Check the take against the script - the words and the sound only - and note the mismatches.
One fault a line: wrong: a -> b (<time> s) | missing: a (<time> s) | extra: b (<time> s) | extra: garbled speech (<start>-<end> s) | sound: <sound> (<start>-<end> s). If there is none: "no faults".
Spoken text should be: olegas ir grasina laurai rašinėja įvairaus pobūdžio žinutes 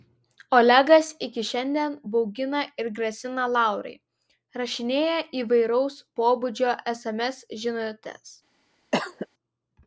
extra: iki šiandien baugina (1.2 s)
extra: sms (6.9 s)
sound: cough (8.9-9.3 s)